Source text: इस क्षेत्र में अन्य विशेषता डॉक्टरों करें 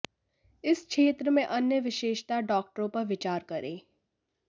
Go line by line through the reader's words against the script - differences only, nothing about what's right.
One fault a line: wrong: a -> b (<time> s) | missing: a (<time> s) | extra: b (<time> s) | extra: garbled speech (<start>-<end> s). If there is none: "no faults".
extra: पर विचार (2.9 s)